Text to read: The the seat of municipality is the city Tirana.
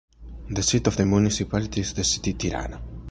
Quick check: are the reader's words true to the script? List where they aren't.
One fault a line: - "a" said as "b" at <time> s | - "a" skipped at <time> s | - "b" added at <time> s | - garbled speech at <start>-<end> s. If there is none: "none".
- "the" skipped at 0.6 s
- "the" added at 0.9 s